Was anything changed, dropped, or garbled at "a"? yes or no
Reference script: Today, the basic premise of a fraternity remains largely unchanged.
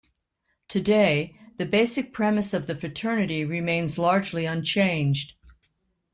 yes